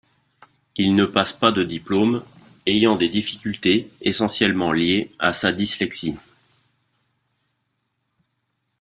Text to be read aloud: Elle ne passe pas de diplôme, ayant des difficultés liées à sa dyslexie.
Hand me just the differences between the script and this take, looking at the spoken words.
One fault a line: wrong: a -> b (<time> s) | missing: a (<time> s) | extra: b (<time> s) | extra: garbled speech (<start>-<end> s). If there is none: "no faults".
wrong: Elle -> Il (0.8 s)
extra: essentiellement (4.0 s)